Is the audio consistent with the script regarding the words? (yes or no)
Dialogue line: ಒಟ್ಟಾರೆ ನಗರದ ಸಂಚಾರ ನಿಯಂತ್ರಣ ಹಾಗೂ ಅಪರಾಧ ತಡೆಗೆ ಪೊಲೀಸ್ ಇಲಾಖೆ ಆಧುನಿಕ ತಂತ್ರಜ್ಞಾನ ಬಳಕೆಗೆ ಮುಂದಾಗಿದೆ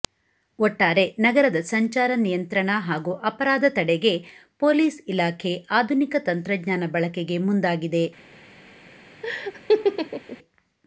yes